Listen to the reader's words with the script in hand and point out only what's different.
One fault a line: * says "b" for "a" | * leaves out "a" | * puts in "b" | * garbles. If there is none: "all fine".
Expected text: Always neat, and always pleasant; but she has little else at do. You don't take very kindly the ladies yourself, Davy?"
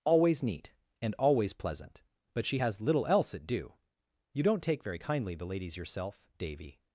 all fine